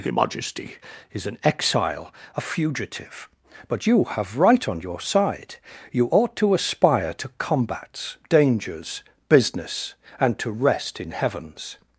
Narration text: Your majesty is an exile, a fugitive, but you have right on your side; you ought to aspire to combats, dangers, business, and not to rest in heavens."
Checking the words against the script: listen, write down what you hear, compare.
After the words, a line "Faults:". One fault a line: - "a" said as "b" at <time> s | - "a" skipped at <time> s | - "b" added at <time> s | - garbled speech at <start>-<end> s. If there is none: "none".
Your majesty is an exile, a fugitive, but you have right on your side; you ought to aspire to combats, dangers, business, and to rest in heavens."
Faults:
- "not" skipped at 10.4 s